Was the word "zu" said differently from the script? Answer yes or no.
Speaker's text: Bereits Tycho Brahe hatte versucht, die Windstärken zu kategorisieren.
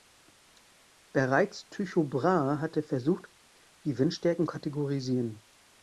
yes